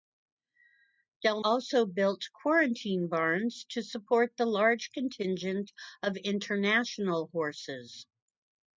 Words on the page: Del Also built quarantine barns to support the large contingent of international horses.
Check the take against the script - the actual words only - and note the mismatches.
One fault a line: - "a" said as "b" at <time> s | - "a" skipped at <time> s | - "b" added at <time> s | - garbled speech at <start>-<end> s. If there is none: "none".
none